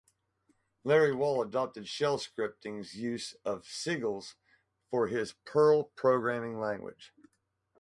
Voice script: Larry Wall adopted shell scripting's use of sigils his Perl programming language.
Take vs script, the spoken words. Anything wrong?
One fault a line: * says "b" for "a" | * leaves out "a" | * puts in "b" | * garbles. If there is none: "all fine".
* puts in "for"